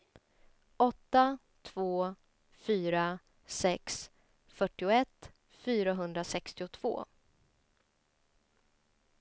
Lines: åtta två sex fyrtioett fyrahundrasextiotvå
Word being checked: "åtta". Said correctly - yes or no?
yes